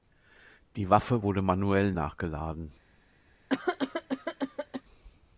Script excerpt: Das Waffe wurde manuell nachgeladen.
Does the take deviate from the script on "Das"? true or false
true